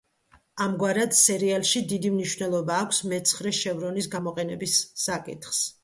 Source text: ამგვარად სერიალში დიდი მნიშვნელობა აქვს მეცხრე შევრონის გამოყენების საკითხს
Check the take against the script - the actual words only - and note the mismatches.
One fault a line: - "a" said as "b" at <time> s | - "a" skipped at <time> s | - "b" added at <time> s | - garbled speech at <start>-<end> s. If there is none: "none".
none